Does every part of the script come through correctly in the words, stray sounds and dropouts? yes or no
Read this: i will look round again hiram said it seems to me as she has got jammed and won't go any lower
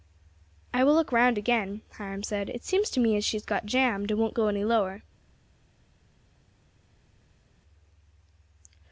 yes